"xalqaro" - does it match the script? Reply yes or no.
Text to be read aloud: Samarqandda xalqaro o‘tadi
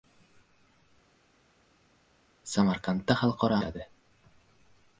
yes